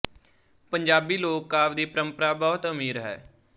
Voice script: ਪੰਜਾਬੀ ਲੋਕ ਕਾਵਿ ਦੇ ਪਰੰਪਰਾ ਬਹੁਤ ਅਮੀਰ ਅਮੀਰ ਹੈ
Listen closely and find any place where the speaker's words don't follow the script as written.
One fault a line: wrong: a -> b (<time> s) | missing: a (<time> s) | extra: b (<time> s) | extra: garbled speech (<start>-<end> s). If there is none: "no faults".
wrong: ਦੇ -> ਦੀ (1.7 s)
missing: ਅਮੀਰ (3.0 s)